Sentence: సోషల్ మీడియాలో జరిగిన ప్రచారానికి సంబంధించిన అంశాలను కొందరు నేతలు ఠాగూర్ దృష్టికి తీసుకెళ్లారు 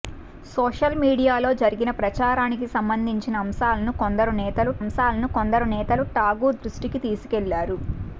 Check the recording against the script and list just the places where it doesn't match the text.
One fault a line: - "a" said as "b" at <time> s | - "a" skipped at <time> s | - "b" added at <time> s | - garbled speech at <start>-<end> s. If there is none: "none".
- "అంశాలను కొందరు నేతలు" added at 4.8 s